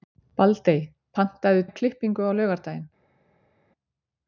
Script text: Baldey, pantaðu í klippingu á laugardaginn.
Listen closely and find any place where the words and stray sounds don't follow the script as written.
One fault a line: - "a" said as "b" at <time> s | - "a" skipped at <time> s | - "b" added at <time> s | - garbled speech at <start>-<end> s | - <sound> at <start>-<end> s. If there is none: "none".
none